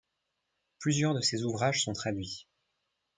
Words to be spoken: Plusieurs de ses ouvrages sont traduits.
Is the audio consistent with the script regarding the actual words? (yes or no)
yes